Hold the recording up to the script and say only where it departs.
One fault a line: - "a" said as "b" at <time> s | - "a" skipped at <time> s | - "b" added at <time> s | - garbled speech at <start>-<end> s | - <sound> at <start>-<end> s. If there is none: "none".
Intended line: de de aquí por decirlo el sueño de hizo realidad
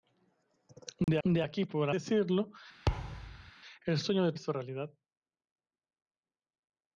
- dropout at 1.0-1.1 s
- thud at 2.9-3.5 s